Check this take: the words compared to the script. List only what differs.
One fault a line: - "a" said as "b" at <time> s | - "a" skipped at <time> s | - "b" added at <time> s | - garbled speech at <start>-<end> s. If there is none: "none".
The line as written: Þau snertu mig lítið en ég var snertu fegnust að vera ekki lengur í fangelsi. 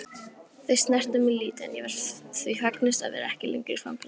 - "snertu" said as "því" at 2.4 s